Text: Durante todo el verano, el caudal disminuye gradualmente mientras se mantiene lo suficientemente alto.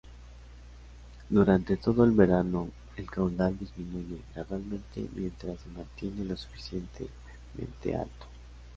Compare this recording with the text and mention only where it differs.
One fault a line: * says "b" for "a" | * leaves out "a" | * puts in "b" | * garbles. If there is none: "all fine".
all fine